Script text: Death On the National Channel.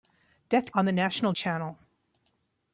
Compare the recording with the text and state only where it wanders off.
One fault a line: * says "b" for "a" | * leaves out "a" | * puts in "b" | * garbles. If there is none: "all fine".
all fine